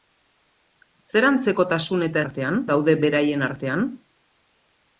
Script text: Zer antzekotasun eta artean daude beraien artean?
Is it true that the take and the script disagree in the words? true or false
false